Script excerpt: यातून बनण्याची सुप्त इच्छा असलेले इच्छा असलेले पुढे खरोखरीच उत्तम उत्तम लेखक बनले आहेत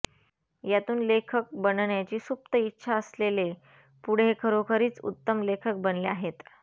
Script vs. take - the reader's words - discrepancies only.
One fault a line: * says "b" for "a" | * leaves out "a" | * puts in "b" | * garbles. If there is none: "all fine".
* puts in "लेखक"
* leaves out "इच्छा असलेले"
* leaves out "उत्तम"